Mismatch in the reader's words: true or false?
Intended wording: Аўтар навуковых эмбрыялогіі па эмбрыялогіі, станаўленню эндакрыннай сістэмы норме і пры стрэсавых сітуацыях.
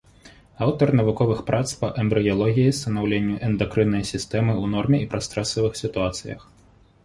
true